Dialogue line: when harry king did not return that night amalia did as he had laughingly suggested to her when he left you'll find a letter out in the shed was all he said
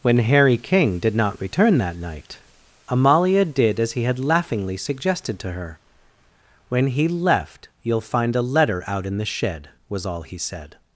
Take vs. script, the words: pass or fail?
pass